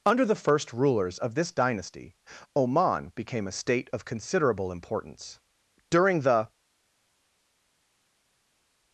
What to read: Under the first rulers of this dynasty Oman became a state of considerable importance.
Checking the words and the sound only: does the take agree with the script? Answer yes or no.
no